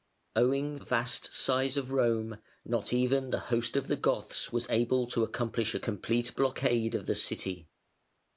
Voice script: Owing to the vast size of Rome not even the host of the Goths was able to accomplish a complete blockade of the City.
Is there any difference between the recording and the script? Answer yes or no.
yes